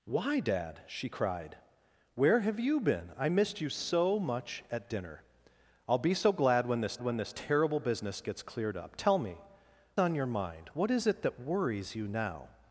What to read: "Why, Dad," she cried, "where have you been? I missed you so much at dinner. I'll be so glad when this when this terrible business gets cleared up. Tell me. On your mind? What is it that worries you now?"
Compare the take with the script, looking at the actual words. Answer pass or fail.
pass